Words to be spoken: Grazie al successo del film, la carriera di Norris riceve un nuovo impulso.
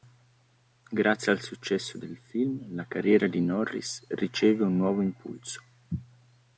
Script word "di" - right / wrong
right